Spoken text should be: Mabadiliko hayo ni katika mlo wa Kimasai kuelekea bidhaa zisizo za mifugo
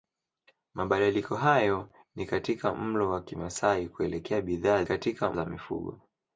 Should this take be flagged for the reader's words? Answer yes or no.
yes